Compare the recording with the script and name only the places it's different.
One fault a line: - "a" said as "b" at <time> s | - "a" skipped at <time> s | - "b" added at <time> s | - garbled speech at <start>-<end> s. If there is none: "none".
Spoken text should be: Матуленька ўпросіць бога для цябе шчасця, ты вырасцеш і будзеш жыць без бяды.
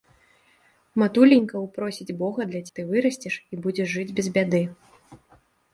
- "цябе шчасця" skipped at 2.6 s